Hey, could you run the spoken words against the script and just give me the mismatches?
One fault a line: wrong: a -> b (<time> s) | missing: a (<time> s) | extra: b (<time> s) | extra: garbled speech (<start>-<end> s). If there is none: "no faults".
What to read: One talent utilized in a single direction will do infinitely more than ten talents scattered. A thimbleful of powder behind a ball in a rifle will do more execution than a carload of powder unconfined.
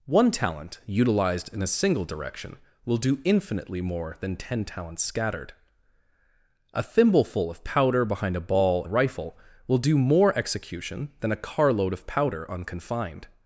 missing: in (8.8 s)